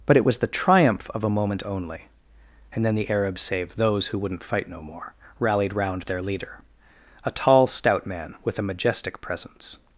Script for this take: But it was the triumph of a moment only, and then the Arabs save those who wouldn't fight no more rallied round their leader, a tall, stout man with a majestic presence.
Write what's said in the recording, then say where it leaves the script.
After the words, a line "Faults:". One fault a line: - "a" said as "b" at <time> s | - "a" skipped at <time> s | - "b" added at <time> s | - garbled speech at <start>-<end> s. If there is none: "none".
But it was the triumph of a moment only, and then the Arabs save those who wouldn't fight no more rallied round their leader, a tall, stout man with a majestic presence.
Faults:
none